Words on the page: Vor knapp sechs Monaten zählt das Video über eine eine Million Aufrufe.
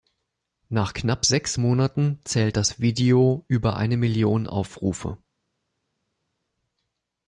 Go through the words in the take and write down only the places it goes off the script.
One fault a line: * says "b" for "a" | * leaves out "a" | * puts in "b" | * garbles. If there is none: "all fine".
* says "Nach" for "Vor"
* leaves out "eine"